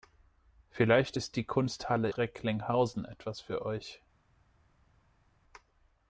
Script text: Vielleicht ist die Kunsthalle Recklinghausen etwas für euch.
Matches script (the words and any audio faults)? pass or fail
pass